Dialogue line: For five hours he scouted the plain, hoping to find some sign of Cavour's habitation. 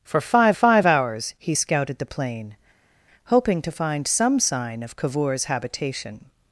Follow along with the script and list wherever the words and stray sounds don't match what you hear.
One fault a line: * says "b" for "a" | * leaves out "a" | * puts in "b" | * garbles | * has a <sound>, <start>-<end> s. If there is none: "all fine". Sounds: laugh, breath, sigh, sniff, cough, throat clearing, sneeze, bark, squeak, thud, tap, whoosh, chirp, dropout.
* puts in "five"